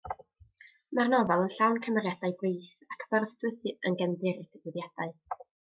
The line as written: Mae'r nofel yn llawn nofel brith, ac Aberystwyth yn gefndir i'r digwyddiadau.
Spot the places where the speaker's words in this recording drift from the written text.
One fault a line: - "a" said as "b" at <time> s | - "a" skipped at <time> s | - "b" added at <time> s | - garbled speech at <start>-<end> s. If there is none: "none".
- "nofel" said as "cymeriadau" at 1.9 s